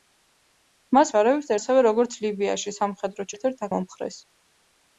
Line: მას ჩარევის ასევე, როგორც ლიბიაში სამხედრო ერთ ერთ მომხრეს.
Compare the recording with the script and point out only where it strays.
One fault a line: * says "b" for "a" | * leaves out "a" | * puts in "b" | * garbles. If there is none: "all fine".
all fine